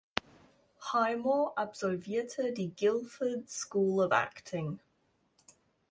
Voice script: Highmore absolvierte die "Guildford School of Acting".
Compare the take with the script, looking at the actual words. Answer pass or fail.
pass